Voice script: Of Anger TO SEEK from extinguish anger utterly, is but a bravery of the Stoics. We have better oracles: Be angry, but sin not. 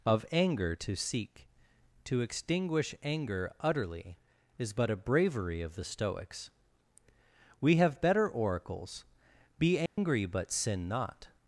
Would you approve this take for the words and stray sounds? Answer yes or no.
no